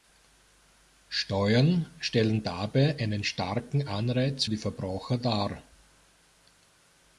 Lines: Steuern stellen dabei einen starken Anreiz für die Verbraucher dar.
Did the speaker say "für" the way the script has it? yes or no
no